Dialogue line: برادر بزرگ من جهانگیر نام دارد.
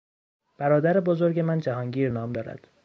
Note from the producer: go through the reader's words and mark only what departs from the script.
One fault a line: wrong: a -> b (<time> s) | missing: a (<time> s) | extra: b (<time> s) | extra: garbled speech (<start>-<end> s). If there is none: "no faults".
no faults